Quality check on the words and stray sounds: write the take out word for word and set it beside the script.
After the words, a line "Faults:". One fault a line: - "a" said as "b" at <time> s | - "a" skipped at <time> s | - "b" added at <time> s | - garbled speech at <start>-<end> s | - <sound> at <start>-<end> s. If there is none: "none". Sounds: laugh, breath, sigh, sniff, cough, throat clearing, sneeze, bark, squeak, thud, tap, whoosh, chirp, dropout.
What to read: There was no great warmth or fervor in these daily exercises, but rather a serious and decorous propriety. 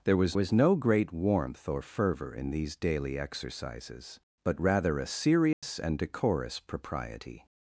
There was was no great warmth or fervor in these daily exercises, but rather a serious and decorous propriety.
Faults:
- "was" added at 0.3 s
- dropout at 5.5-5.6 s